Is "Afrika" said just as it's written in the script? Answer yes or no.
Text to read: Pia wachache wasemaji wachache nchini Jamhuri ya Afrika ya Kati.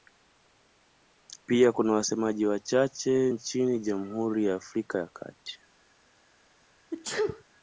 yes